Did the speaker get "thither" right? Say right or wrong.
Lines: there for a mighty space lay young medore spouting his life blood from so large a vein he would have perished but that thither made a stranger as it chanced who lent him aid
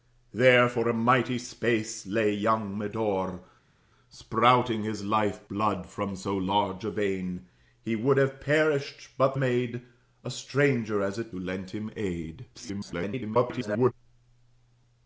wrong